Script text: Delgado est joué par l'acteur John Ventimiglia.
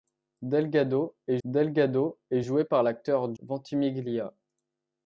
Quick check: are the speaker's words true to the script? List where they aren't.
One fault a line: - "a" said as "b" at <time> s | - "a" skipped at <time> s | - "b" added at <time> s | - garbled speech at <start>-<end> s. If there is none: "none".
- "delgado est" added at 1.4 s
- "John" skipped at 3.4 s